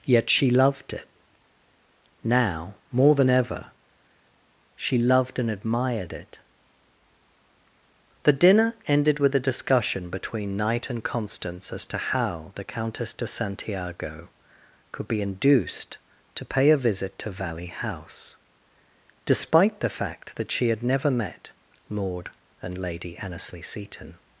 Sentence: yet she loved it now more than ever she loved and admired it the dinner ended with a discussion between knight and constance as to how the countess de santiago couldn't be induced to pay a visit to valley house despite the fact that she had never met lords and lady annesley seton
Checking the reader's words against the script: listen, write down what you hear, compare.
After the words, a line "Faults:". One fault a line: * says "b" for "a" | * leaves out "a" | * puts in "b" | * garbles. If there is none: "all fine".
yet she loved it now more than ever she loved and admired it the dinner ended with a discussion between knight and constance as to how the countess de santiago could be induced to pay a visit to valley house despite the fact that she had never met lord and lady annesley seton
Faults:
* says "could" for "couldn't"
* says "lord" for "lords"